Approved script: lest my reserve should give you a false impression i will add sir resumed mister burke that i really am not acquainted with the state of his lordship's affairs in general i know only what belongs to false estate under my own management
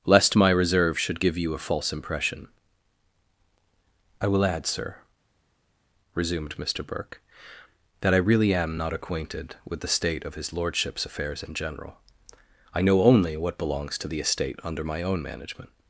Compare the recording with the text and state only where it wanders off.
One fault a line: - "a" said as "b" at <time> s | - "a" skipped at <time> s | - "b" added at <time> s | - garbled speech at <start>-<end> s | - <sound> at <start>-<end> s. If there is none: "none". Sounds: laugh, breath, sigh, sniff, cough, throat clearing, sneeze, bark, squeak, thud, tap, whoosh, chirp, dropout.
- "false" said as "the" at 14.1 s